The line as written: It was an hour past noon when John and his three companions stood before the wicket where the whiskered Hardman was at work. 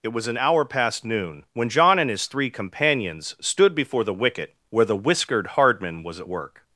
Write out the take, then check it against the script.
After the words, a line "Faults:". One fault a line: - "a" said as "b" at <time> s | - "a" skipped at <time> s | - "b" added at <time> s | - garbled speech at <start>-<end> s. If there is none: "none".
It was an hour past noon when John and his three companions stood before the wicket where the whiskered Hardman was at work.
Faults:
none